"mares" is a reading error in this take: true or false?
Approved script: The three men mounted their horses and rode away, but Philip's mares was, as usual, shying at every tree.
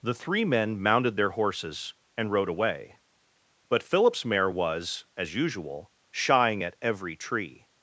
true